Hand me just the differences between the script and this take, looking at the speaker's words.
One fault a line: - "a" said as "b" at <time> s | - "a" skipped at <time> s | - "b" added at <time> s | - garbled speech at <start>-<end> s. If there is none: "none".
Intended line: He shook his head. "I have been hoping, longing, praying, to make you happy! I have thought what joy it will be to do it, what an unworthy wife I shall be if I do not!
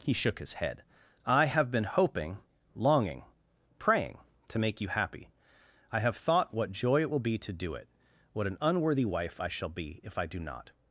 none